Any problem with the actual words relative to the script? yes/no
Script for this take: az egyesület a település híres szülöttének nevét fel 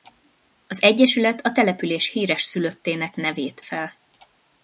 no